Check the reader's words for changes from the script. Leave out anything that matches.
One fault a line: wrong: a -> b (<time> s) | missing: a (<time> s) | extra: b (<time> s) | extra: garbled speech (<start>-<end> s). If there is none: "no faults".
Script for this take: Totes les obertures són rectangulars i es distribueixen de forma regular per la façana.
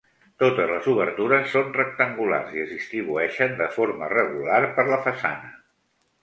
no faults